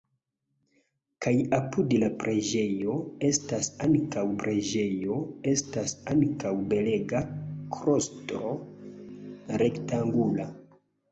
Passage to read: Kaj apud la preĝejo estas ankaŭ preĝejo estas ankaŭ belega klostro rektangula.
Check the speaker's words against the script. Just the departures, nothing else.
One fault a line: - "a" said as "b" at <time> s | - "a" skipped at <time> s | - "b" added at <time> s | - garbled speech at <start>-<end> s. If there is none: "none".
none